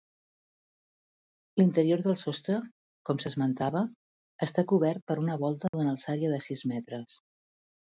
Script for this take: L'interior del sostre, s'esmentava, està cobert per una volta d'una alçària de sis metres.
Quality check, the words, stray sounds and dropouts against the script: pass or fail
fail